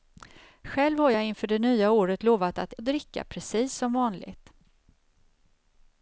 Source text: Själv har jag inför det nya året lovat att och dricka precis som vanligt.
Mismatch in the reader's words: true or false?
false